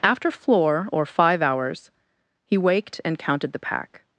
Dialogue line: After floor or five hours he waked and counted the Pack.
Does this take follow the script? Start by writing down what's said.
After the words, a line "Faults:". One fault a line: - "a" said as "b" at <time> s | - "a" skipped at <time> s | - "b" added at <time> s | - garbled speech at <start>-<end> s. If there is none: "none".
After floor or five hours he waked and counted the Pack.
Faults:
none